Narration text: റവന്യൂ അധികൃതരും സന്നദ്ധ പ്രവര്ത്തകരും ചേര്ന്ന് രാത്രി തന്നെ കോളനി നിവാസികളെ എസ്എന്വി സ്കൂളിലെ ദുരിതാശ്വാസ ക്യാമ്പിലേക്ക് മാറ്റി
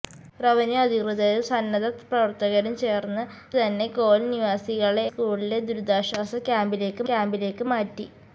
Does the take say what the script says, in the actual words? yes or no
no